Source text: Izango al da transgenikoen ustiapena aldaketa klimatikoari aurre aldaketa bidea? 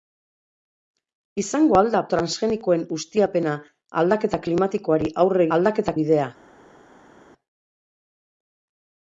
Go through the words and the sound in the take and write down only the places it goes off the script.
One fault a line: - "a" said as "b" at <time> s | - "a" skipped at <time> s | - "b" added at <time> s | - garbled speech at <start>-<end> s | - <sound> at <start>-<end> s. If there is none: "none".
none